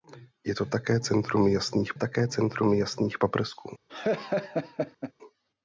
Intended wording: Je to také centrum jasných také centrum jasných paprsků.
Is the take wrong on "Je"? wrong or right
right